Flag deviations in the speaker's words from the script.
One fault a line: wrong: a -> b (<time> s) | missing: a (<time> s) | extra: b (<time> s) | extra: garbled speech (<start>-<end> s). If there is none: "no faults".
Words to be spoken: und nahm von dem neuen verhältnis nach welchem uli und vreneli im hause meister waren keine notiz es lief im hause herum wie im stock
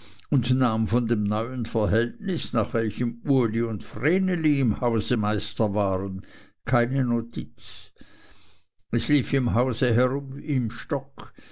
no faults